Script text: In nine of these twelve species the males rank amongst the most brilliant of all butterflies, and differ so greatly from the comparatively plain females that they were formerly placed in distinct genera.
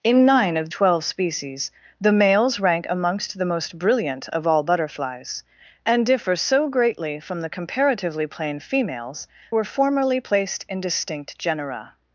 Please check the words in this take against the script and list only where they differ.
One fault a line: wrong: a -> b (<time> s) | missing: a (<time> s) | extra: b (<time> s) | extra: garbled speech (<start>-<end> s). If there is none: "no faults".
missing: these (0.7 s)
missing: that they (9.3 s)